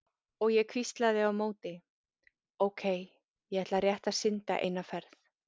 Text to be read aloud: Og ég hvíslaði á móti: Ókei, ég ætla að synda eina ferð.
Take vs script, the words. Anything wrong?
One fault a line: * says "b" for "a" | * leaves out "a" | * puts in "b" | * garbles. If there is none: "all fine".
* puts in "rétt"